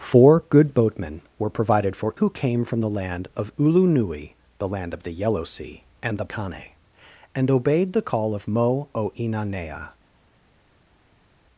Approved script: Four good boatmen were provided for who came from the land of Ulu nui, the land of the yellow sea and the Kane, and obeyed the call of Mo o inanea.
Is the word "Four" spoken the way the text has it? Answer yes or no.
yes